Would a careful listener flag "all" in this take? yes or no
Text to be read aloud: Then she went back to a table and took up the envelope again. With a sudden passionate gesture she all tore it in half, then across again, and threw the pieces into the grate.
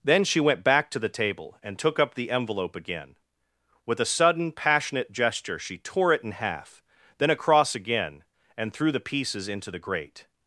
yes